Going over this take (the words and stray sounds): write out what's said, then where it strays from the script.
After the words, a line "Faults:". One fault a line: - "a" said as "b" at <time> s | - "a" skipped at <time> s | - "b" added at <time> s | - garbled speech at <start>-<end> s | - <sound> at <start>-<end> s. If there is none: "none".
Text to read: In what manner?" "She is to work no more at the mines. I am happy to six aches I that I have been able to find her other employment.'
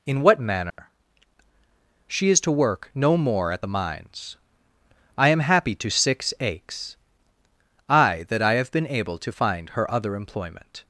In what manner?" "She is to work no more at the mines. I am happy to six aches I that I have been able to find her other employment.'
Faults:
- dropout at 0.7-0.8 s